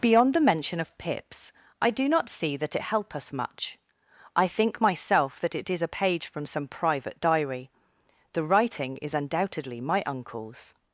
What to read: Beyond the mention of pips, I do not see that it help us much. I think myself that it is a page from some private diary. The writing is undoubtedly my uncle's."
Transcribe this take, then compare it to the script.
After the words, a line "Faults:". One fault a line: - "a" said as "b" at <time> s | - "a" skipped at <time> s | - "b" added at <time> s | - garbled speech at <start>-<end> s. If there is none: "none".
Beyond the mention of pips, I do not see that it help us much. I think myself that it is a page from some private diary. The writing is undoubtedly my uncle's."
Faults:
none